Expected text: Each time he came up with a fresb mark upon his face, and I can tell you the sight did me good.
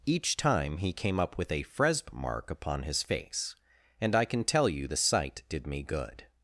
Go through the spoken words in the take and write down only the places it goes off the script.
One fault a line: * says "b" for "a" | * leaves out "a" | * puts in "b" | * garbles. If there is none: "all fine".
all fine